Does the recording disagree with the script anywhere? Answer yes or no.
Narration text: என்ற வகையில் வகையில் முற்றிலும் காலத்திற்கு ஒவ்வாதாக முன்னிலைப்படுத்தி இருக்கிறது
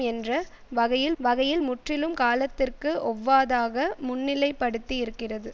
no